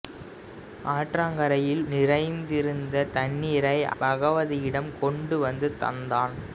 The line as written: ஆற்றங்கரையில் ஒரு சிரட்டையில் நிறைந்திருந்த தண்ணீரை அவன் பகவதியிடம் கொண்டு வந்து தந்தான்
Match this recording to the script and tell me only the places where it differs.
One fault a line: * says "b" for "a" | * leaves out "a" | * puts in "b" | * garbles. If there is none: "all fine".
* leaves out "ஒரு சிரட்டையில்"
* leaves out "அவன்"